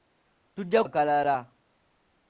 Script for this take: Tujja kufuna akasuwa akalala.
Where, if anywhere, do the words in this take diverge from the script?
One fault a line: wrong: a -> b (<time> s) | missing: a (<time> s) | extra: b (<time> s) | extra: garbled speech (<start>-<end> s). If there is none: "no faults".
missing: kufuna akasuwa (0.8 s)